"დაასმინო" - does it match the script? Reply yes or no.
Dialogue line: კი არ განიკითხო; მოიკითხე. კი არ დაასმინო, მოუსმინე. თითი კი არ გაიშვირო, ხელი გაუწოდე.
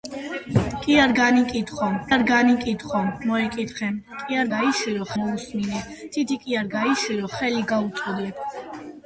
no